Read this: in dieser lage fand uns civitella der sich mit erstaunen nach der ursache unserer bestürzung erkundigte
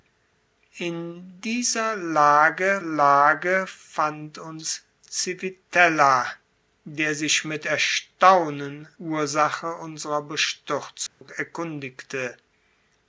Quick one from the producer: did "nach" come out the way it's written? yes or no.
no